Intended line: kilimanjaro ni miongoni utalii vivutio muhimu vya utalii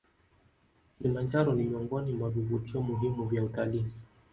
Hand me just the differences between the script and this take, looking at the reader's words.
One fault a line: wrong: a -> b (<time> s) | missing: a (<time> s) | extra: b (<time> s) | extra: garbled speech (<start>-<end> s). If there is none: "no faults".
wrong: utalii -> mwa (2.1 s)